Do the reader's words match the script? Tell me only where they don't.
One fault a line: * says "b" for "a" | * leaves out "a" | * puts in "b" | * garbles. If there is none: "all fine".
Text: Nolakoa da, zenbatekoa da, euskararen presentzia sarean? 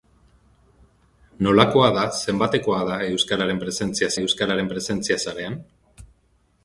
* puts in "euskararen presentzia"